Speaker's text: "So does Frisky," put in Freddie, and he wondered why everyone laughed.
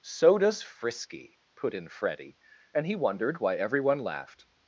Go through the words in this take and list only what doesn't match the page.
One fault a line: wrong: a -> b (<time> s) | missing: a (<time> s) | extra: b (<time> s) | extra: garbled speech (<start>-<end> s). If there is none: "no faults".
no faults